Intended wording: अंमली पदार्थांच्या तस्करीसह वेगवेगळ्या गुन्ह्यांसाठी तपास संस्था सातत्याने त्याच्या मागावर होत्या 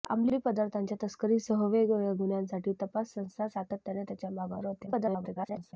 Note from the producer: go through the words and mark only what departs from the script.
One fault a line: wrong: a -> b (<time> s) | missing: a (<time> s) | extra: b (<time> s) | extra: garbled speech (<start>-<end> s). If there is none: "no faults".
extra: garbled speech (4.9-5.7 s)